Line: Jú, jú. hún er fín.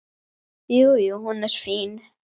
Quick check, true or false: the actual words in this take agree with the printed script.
true